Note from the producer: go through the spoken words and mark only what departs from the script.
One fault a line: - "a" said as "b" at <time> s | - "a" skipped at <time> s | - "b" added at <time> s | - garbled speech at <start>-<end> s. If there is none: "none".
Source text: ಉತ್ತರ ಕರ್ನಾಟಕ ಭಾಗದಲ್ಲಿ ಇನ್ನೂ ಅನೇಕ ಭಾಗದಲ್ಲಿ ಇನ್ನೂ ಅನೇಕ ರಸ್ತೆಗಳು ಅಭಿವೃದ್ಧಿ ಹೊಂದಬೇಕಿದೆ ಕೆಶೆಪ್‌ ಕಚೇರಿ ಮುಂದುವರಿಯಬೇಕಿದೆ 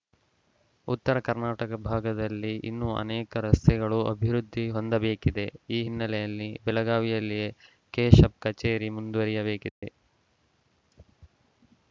- "ಭಾಗದಲ್ಲಿ ಇನ್ನೂ ಅನೇಕ ರಸ್ತೆಗಳು ಅಭಿವೃದ್ಧಿ ಹೊಂದಬೇಕಿದೆ" said as "ರಸ್ತೆಗಳು ಅಭಿವೃದ್ಧಿ ಹೊಂದಬೇಕಿದೆ ಈ ಹಿನ್ನೆಲೆಯಲ್ಲಿ ಬೆಳಗಾವಿಯಲ್ಲಿಯೇ" at 3.5 s